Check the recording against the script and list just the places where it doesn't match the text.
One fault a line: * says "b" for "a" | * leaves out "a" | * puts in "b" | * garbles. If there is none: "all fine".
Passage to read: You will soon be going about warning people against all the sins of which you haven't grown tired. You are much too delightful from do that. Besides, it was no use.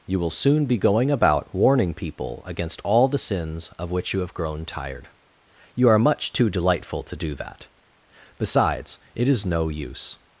* says "have" for "haven't"
* says "to" for "from"
* says "is" for "was"